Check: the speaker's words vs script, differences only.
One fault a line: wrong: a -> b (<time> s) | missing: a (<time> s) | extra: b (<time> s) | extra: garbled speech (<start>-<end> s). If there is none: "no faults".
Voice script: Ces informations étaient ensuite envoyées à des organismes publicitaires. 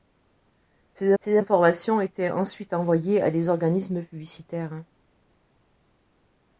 extra: ces (1.2 s)